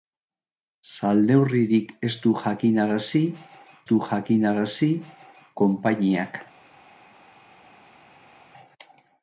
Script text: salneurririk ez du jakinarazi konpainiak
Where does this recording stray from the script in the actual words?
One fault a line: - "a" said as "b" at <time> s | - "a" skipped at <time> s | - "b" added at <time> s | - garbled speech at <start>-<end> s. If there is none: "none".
- "du jakinarazi" added at 3.9 s